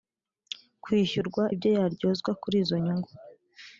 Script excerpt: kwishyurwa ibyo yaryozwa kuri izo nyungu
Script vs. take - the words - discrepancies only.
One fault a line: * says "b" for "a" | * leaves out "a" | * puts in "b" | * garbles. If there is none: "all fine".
all fine